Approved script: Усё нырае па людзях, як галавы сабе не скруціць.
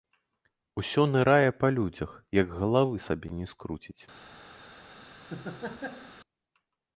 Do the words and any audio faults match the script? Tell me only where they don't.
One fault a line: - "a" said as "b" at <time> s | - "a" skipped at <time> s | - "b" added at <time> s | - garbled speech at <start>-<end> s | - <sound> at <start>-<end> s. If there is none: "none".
- laugh at 5.3-6.1 s